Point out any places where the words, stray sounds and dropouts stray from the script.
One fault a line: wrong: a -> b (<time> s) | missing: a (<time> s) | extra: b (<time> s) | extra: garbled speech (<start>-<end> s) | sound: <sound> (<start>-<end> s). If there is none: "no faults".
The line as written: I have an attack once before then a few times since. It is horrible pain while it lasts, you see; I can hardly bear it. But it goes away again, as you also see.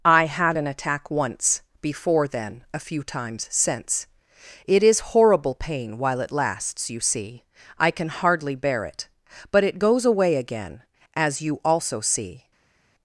wrong: have -> had (0.2 s)